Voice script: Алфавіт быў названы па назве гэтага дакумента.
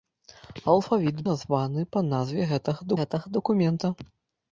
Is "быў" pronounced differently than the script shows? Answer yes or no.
yes